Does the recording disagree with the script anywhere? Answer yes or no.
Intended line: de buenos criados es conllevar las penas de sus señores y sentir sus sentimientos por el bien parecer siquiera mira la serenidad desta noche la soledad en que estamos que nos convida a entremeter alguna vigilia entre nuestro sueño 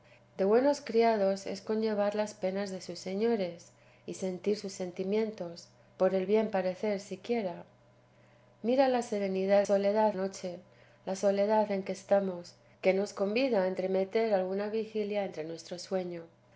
yes